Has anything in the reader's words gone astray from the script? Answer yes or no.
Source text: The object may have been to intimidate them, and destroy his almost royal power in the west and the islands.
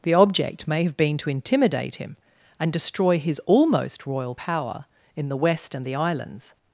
yes